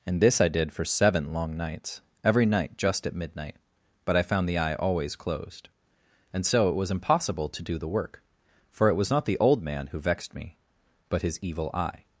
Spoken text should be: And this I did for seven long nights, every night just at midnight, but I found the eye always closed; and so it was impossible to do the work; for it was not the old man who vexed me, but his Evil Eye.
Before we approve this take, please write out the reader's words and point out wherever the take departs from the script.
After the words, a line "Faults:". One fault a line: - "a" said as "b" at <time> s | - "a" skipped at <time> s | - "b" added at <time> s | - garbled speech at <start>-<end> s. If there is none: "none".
And this I did for seven long nights, every night just at midnight, but I found the eye always closed; and so it was impossible to do the work; for it was not the old man who vexed me, but his Evil Eye.
Faults:
none